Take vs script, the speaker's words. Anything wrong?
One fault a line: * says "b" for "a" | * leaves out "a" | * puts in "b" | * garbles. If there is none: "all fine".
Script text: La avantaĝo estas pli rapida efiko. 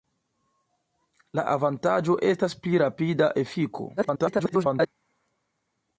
* garbles